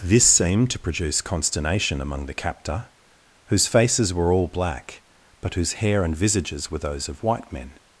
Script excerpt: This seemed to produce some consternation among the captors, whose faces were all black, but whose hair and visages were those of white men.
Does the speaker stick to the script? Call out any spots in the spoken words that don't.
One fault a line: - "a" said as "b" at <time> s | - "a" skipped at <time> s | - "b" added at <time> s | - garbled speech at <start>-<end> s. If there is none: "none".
- "some" skipped at 1.2 s
- "captors" said as "captor" at 2.3 s